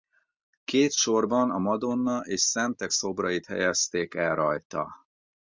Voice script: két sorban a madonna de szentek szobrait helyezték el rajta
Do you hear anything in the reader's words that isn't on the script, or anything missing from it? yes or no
yes